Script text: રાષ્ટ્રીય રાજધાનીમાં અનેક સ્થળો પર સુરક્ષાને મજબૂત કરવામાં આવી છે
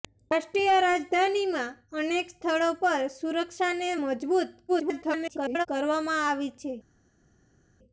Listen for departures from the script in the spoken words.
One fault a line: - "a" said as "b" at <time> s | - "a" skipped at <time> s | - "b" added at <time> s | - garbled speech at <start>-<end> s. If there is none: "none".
- garbled speech at 4.7-5.7 s